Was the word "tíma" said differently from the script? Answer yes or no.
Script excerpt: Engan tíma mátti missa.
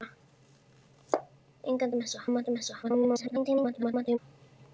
yes